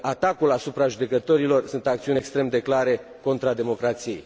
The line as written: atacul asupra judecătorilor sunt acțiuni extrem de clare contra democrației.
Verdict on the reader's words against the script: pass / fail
pass